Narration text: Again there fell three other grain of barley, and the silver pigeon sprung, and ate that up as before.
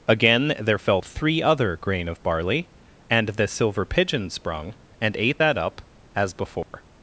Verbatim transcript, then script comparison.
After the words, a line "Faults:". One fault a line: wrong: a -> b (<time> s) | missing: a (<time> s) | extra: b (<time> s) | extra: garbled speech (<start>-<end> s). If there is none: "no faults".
Again there fell three other grain of barley, and the silver pigeon sprung, and ate that up as before.
Faults:
no faults